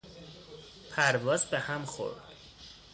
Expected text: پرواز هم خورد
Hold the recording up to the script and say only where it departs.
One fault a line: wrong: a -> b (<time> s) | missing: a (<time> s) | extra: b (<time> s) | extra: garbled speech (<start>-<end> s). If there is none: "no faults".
extra: به (1.4 s)